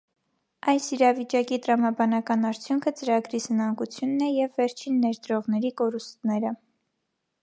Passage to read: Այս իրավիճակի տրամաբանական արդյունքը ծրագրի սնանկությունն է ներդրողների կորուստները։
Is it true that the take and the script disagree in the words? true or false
true